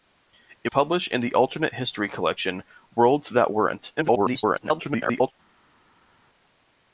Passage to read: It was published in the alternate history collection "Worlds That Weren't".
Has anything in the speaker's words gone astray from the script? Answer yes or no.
yes